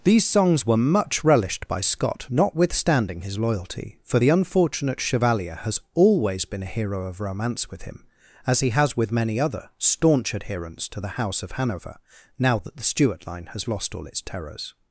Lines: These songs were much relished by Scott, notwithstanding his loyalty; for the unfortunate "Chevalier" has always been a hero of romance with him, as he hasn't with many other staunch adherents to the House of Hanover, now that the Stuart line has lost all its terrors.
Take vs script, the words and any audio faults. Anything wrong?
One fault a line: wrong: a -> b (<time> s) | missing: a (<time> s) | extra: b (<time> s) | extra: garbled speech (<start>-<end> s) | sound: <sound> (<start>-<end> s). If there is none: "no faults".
wrong: hasn't -> has (8.7 s)